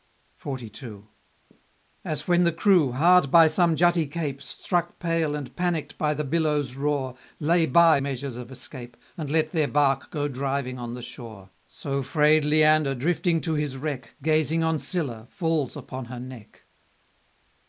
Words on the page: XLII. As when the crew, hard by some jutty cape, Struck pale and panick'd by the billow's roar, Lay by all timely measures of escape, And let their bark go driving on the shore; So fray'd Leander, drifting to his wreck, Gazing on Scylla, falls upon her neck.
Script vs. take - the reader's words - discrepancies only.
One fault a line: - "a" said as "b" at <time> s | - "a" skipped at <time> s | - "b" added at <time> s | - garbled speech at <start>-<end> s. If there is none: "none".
- "all timely" skipped at 8.0 s